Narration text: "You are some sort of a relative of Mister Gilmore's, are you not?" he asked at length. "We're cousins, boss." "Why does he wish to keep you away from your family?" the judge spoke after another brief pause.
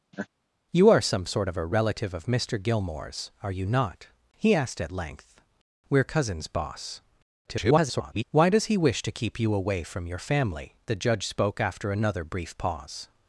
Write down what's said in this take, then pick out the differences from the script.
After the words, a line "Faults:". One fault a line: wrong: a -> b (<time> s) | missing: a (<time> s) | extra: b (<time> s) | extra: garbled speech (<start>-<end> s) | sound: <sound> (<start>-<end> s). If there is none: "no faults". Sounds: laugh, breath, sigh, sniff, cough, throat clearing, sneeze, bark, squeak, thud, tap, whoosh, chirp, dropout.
"You are some sort of a relative of Mister Gilmore's, are you not?" he asked at length. "We're cousins, boss." [garbled] "Why does he wish to keep you away from your family?" the judge spoke after another brief pause.
Faults:
sound: laugh (0.1-0.3 s)
extra: garbled speech (7.5-8.2 s)